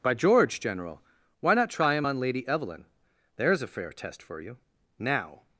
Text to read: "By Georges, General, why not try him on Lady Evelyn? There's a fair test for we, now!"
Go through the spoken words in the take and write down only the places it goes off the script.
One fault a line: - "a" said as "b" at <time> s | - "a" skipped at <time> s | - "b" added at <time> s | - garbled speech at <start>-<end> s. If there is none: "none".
- "Georges" said as "George" at 0.1 s
- "we" said as "you" at 4.4 s